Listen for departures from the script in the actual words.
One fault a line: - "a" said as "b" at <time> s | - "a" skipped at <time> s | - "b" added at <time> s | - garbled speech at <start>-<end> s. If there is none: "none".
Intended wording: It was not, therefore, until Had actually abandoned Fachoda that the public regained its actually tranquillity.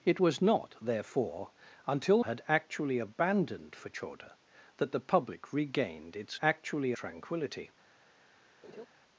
none